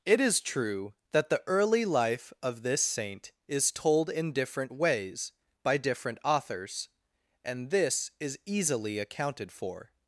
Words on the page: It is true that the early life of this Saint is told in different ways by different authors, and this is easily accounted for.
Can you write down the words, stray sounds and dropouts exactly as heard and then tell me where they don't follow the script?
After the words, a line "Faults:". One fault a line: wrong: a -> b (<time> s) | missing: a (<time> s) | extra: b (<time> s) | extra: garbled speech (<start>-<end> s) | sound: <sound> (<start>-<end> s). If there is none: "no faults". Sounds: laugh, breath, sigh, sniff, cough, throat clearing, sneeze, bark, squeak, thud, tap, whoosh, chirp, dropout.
It is true that the early life of this Saint is told in different ways by different authors, and this is easily accounted for.
Faults:
no faults